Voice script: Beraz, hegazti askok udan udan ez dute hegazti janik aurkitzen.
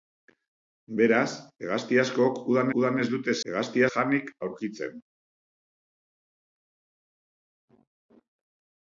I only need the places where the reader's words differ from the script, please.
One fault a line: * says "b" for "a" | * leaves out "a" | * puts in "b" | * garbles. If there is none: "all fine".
all fine